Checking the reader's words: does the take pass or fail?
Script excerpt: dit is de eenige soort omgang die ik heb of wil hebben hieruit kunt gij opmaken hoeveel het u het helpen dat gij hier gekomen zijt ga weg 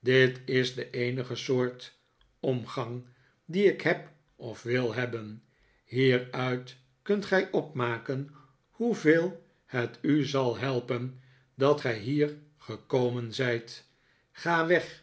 fail